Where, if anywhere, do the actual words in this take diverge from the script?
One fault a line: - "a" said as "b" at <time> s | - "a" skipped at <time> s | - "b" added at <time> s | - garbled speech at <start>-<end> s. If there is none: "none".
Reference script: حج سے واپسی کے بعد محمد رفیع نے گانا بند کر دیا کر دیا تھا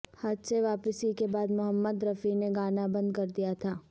- "کر دیا" skipped at 3.5 s